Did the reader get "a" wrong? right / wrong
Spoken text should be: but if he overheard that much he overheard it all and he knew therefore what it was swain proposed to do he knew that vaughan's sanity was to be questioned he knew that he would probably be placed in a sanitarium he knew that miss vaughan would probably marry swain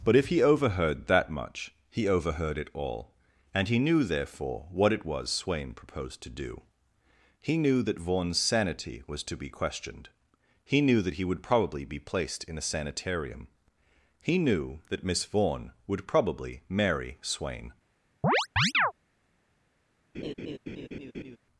right